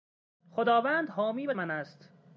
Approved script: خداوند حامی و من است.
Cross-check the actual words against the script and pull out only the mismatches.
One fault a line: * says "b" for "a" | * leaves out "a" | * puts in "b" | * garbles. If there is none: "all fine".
all fine